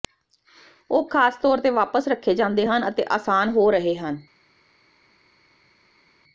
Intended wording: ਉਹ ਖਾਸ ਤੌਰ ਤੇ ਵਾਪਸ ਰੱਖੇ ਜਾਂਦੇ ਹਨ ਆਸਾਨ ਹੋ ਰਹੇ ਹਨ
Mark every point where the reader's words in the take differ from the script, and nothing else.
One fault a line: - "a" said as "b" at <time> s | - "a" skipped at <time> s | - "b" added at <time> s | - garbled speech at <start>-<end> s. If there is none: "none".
- "ਅਤੇ" added at 2.9 s